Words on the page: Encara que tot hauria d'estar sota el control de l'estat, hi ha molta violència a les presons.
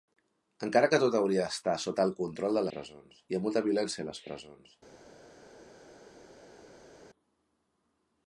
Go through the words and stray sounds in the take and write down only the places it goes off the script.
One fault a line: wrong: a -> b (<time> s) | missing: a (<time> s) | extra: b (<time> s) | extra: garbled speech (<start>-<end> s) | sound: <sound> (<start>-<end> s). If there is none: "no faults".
wrong: l'estat -> presons (2.7 s)